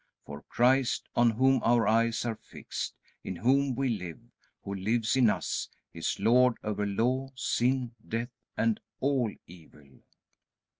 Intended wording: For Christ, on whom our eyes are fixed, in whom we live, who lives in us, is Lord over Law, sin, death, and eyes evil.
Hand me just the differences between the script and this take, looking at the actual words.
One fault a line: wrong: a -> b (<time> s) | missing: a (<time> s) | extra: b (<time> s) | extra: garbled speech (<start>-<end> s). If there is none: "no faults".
wrong: eyes -> all (9.0 s)